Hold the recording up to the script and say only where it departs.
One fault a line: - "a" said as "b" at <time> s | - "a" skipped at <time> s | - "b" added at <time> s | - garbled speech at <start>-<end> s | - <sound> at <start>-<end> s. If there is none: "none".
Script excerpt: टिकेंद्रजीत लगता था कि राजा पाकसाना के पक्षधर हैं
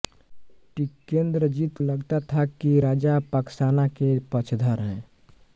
none